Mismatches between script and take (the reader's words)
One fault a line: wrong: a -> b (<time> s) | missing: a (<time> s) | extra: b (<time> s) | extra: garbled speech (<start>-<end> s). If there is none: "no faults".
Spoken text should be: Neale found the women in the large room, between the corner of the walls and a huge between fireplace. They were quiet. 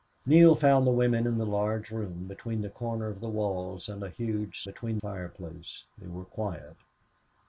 no faults